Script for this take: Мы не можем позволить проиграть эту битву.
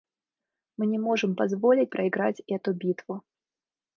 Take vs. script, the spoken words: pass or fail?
pass